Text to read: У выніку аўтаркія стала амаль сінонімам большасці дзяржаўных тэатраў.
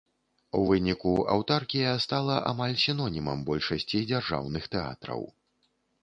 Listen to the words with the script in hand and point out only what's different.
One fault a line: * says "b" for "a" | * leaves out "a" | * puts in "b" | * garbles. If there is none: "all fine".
all fine